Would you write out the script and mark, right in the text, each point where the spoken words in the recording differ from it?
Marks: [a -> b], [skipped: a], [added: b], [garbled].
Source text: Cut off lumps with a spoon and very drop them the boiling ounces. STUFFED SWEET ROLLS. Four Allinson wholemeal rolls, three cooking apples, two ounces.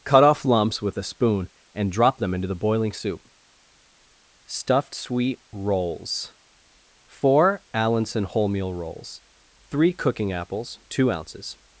Cut off lumps with a spoon and [skipped: very] drop them [added: into] the boiling [ounces. -> soup] STUFFED SWEET ROLLS. Four Allinson wholemeal rolls, three cooking apples, two ounces.